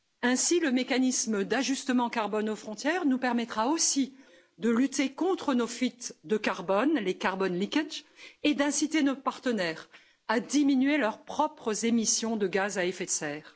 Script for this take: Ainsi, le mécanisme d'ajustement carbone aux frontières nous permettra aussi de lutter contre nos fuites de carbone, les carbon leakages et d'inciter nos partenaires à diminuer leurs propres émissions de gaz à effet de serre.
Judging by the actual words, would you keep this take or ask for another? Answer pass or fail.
pass